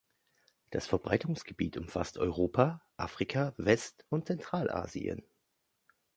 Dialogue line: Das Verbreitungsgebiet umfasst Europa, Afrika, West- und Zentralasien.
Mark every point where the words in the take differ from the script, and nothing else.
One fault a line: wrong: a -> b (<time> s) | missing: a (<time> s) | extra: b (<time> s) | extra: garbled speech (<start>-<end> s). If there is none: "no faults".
no faults